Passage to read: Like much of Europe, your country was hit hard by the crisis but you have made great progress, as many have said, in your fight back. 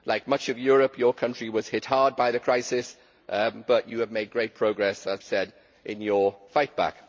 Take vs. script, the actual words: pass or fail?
fail